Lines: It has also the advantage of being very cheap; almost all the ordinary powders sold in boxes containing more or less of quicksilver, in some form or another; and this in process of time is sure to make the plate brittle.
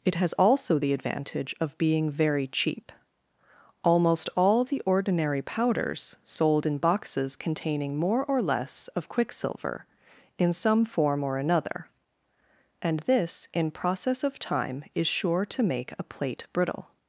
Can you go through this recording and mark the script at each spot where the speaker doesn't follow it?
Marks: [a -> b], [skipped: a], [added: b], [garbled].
It has also the advantage of being very cheap; almost all the ordinary powders sold in boxes containing more or less of quicksilver, in some form or another; and this in process of time is sure to make [the -> a] plate brittle.